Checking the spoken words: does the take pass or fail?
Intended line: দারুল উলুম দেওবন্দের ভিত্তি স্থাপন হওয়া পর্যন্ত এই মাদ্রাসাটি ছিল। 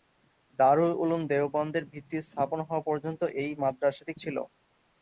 pass